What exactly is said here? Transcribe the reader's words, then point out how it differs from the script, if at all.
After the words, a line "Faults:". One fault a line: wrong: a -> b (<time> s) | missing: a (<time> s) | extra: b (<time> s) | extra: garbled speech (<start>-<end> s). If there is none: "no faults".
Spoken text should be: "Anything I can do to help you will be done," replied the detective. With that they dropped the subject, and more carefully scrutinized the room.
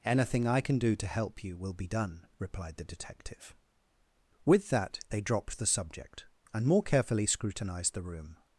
"Anything I can do to help you will be done," replied the detective. With that they dropped the subject, and more carefully scrutinized the room.
Faults:
no faults